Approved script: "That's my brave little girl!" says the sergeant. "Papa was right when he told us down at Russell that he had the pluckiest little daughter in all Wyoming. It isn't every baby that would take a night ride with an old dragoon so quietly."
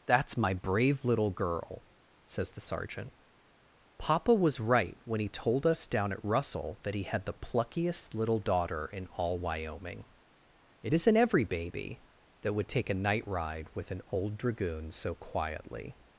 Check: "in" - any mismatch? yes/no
no